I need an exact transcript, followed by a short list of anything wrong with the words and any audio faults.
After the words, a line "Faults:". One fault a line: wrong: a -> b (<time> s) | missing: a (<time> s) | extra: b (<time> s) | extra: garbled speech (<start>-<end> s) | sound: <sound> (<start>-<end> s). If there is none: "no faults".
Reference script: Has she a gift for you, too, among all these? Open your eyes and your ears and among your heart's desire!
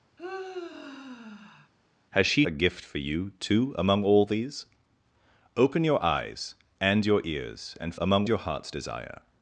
Has she a gift for you, too, among all these? Open your eyes and your ears and among your heart's desire!
Faults:
sound: sigh (0.2-1.7 s)